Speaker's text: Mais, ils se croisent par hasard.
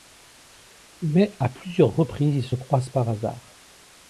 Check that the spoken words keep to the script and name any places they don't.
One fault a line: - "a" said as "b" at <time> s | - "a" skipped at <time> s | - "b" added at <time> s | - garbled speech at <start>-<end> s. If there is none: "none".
- "à plusieurs reprises" added at 1.4 s